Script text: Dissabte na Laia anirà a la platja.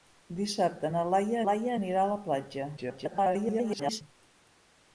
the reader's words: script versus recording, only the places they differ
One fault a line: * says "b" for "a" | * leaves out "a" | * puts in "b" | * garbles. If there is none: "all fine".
* puts in "Laia"
* garbles